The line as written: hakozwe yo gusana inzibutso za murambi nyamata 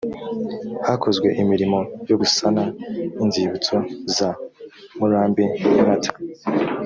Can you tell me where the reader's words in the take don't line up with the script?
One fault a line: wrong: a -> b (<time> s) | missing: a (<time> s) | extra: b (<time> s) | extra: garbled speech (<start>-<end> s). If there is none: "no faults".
extra: imirimo (1.4 s)